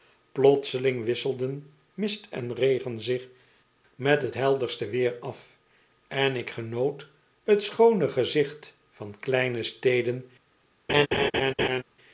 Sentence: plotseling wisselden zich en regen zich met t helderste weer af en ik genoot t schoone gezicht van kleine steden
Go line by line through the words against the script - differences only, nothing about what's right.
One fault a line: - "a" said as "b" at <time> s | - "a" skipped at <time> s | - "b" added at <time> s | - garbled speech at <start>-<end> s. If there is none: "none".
- "zich" said as "mist" at 1.9 s